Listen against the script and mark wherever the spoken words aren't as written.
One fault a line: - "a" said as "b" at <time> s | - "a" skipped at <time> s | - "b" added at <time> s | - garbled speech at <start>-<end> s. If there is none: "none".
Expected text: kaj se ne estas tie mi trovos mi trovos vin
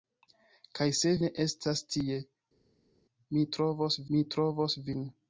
none